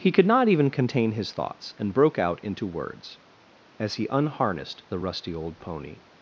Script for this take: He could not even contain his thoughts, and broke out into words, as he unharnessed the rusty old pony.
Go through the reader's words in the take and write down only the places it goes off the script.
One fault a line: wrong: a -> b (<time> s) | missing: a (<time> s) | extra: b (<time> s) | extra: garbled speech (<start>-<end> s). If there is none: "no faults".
no faults